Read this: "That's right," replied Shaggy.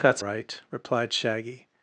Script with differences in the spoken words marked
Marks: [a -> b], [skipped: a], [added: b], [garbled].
"That's right," replied Shaggy.